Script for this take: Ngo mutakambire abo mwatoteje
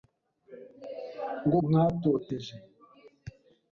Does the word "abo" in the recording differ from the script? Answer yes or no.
yes